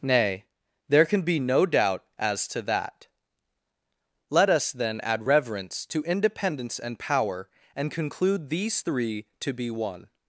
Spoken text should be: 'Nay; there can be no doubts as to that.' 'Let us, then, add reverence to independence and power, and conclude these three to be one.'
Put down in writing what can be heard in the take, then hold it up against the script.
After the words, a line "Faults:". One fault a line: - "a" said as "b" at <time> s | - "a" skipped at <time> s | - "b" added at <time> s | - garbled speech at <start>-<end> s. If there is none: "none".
'Nay; there can be no doubt as to that.' 'Let us, then, add reverence to independence and power, and conclude these three to be one.'
Faults:
- "doubts" said as "doubt" at 1.7 s